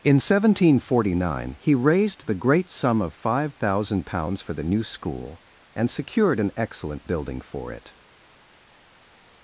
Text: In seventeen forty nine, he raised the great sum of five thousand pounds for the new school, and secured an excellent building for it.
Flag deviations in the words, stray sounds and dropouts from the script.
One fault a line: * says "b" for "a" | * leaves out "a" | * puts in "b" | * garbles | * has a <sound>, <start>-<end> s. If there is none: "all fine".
all fine